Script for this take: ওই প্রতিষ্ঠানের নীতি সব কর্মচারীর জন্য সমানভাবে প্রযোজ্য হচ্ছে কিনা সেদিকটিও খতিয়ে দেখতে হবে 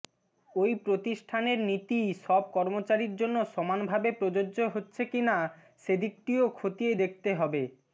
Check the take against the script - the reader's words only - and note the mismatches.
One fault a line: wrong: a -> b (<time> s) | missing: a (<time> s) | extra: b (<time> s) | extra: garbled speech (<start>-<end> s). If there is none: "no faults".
no faults